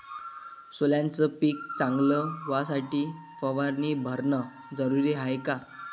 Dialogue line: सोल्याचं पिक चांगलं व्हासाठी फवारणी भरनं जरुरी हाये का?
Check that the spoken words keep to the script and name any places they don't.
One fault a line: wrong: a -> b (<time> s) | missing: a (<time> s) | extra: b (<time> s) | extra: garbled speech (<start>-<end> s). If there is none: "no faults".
no faults